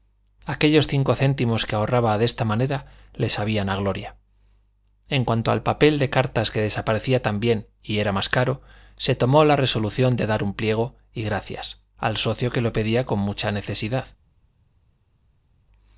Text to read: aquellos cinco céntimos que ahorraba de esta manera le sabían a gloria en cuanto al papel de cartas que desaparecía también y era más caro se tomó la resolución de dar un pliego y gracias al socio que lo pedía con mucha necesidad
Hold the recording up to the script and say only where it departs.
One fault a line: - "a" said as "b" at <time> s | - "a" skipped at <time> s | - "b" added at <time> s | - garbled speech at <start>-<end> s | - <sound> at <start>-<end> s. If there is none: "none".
none